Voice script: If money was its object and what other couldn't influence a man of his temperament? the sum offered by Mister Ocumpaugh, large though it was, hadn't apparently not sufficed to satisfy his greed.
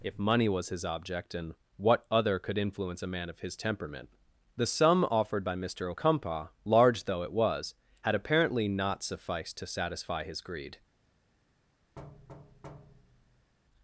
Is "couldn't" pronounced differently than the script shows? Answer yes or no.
yes